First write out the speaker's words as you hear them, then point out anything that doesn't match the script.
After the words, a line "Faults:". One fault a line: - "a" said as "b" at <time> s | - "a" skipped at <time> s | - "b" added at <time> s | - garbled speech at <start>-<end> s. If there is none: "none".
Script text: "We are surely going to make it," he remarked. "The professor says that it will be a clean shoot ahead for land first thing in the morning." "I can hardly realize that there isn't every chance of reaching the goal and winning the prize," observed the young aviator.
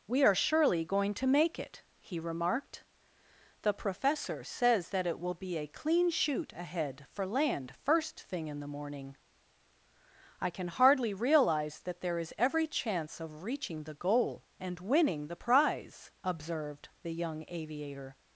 "We are surely going to make it," he remarked. "The professor says that it will be a clean shoot ahead for land first thing in the morning." "I can hardly realize that there is every chance of reaching the goal and winning the prize," observed the young aviator.
Faults:
- "isn't" said as "is" at 12.2 s